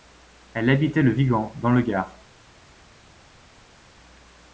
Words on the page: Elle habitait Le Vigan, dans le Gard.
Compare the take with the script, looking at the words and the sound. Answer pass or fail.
pass